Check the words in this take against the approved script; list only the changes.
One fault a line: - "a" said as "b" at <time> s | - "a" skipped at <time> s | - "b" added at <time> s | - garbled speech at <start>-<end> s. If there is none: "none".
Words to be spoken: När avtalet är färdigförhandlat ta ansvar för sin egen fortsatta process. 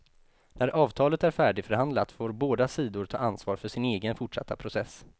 - "får båda sidor" added at 2.1 s